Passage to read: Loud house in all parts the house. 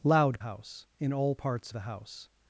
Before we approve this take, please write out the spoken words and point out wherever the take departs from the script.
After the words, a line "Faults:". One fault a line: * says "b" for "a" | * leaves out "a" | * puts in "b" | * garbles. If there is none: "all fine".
Loud house in all parts the house.
Faults:
all fine